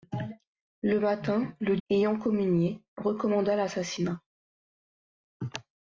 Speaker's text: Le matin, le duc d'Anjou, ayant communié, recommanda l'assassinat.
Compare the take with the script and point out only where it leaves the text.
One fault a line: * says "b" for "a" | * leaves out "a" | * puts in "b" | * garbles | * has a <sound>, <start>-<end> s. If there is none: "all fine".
* leaves out "duc d'Anjou"